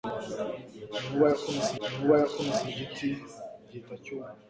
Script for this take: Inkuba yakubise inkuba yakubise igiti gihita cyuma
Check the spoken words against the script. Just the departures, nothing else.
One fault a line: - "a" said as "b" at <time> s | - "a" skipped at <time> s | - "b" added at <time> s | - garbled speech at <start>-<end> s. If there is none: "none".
none